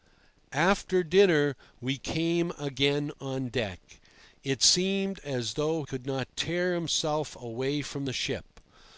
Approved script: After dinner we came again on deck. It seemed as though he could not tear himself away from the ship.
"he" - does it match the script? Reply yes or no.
no